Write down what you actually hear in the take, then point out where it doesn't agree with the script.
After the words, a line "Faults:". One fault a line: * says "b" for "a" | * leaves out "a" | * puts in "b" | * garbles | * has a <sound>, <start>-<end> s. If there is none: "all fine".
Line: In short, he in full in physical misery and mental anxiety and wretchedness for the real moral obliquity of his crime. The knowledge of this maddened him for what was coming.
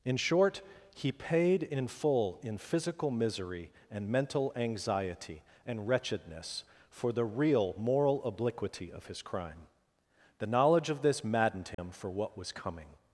In short, he paid in full in physical misery and mental anxiety and wretchedness for the real moral obliquity of his crime. The knowledge of this maddened him for what was coming.
Faults:
* puts in "paid"
* has a dropout, 11.7-11.8 s